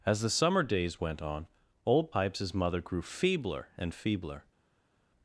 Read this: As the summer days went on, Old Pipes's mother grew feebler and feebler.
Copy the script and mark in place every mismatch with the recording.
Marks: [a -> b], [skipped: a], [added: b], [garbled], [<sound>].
As the summer days went on, Old Pipes's mother grew feebler and feebler.